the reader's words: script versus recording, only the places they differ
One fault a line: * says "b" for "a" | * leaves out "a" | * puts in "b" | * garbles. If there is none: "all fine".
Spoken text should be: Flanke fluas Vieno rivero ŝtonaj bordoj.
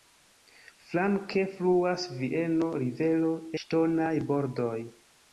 all fine